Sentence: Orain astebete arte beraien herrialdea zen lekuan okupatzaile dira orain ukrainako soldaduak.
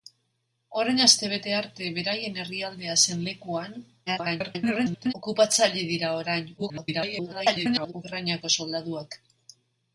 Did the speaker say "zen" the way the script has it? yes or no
yes